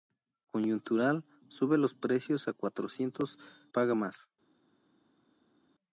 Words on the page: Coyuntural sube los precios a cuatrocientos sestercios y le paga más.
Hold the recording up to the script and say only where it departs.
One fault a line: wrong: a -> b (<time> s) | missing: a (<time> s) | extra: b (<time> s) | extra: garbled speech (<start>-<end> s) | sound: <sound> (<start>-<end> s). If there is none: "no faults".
missing: sestercios y le (3.4 s)